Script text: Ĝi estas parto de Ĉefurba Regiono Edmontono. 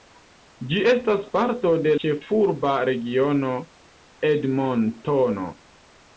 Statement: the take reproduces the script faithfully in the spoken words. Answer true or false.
true